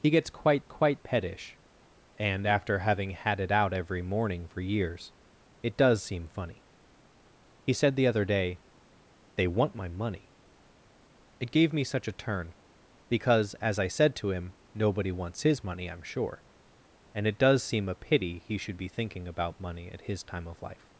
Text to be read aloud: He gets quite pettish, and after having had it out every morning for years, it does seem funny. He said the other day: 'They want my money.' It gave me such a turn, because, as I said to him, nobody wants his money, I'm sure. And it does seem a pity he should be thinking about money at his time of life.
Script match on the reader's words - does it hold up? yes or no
no